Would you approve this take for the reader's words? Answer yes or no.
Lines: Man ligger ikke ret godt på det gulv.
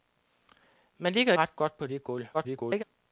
no